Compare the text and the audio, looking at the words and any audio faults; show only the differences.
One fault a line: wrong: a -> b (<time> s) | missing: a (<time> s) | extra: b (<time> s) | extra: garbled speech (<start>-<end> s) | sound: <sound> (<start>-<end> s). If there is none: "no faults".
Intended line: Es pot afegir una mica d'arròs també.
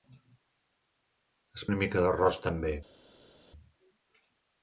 missing: pot afegir (1.6 s)